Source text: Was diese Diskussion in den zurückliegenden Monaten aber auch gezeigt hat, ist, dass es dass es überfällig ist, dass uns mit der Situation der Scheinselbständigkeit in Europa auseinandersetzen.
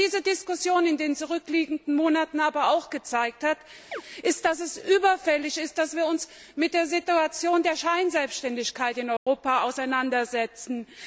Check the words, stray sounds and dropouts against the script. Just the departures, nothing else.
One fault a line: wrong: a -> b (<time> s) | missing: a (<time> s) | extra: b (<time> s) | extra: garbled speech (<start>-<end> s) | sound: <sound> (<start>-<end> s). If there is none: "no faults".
sound: chirp (3.9-4.0 s)
missing: dass es (4.8 s)
extra: wir (6.0 s)
sound: dropout (9.2-9.3 s)